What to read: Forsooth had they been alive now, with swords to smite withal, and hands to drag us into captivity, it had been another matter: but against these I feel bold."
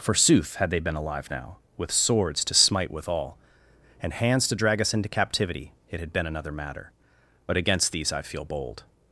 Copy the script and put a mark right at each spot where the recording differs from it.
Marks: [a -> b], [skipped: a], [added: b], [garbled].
Forsooth had they been alive now, with swords to smite withal, and hands to drag us into captivity, it had been another matter: but against these I feel bold."